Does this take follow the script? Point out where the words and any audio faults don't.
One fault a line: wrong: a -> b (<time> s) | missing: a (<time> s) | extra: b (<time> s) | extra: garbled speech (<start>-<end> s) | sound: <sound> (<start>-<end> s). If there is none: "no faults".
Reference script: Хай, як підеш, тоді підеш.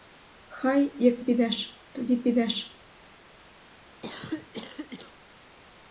sound: cough (4.0-5.1 s)